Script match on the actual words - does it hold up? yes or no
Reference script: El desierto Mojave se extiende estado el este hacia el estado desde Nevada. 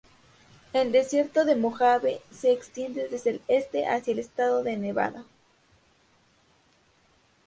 no